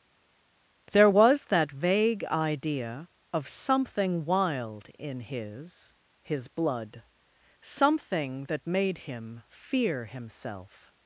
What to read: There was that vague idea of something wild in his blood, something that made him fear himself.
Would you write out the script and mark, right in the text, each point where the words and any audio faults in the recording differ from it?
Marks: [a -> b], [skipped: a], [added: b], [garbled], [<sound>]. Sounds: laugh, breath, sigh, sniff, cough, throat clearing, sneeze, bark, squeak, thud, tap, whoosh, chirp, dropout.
There was that vague idea of something wild in his [added: his] blood, something that made him fear himself.